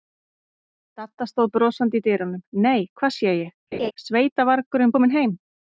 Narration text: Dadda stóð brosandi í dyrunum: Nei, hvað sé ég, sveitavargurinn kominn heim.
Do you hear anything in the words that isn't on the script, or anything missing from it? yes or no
no